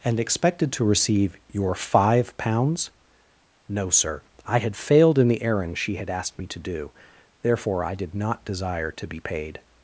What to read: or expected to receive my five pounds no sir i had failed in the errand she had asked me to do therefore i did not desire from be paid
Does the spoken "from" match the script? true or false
false